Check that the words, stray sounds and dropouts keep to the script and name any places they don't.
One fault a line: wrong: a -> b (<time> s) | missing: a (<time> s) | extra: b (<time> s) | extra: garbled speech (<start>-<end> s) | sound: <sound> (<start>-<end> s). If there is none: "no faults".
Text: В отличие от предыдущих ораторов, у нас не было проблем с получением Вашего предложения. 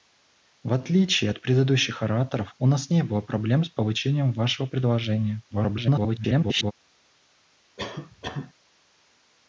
extra: garbled speech (5.5-6.7 s)
sound: cough (7.8-8.5 s)